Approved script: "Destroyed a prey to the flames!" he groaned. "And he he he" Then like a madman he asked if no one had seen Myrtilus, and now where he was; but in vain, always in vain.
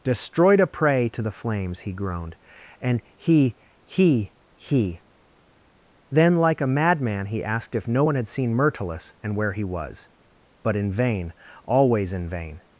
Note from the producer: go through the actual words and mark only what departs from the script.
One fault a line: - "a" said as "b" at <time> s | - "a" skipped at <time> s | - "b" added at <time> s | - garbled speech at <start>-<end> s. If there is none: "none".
- "now" skipped at 9.4 s